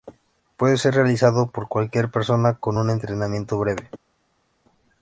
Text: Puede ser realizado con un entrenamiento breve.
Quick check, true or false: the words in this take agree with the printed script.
false